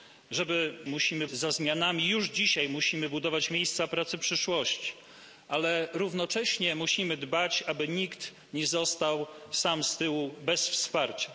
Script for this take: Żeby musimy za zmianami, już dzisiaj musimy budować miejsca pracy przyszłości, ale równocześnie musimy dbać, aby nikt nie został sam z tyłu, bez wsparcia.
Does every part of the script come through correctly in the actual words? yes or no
yes